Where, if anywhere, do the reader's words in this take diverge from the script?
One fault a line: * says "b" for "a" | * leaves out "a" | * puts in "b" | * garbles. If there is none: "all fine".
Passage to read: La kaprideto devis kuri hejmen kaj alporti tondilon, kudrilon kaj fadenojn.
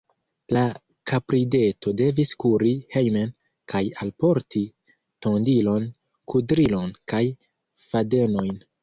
all fine